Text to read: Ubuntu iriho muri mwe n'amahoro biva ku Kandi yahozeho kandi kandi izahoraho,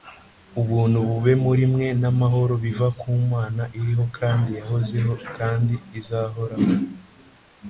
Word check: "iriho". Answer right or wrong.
wrong